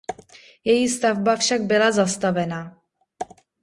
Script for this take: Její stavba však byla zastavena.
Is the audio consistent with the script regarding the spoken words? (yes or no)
yes